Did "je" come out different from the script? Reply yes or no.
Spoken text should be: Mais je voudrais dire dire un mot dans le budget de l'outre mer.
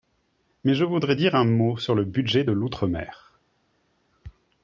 no